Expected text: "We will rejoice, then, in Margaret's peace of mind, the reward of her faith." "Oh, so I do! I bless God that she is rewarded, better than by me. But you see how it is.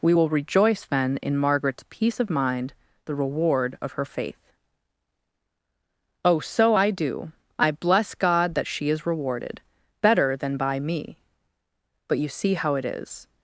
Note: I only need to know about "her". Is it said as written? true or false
true